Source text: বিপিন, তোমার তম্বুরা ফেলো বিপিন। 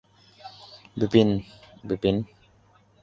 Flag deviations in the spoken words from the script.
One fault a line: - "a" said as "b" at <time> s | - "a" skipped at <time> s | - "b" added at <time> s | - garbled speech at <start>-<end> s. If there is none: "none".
- "তোমার তম্বুরা ফেলো" skipped at 1.3 s